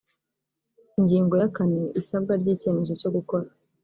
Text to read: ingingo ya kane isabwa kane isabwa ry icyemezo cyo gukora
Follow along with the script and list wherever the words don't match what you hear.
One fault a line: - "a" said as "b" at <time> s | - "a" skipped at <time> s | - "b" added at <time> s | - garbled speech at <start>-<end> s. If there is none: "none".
- "kane isabwa" skipped at 2.3 s